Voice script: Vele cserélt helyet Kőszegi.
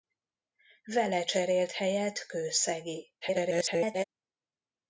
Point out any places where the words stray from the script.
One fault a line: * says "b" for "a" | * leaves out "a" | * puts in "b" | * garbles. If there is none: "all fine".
* garbles